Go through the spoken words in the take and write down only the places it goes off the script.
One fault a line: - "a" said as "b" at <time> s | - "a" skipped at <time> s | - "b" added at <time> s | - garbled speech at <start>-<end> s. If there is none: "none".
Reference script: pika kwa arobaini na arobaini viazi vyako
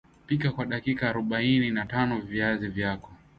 - "dakika" added at 0.7 s
- "arobaini" said as "tano" at 1.9 s